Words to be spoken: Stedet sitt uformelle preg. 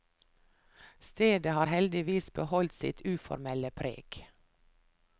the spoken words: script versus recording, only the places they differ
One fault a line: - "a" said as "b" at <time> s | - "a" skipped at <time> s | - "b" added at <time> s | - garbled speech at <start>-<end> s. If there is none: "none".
- "har heldigvis beholdt" added at 1.5 s